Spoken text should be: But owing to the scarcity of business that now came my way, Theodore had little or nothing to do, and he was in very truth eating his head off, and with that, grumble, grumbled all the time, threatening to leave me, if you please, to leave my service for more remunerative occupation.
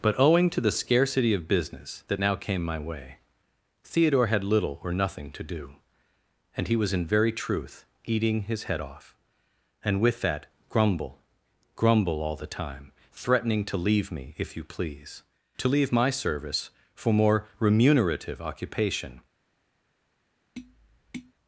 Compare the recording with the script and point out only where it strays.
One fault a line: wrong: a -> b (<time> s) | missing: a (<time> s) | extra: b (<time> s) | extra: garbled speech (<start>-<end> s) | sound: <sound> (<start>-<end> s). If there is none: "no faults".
wrong: grumbled -> grumble (11.8 s)
sound: tap (20.6-21.3 s)